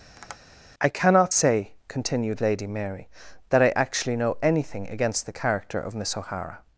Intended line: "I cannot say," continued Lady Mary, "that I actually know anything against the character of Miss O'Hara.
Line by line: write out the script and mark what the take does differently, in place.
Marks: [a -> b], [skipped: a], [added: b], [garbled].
"I cannot say," continued Lady Mary, "that I actually know anything against the character of Miss O'Hara.